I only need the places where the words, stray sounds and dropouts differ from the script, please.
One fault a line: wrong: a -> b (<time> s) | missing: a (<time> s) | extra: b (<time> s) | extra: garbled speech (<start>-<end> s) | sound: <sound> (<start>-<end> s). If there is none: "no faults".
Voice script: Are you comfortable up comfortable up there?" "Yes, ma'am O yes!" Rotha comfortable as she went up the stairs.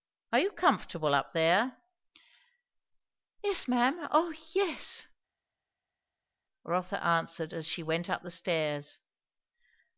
missing: comfortable up (1.3 s)
wrong: comfortable -> answered (7.1 s)